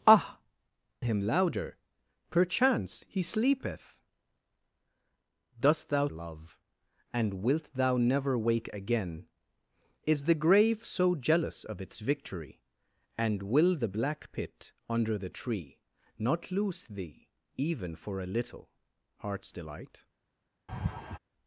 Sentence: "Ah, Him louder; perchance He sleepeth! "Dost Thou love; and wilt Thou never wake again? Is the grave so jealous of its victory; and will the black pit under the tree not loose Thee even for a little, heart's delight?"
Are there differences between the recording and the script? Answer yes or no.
no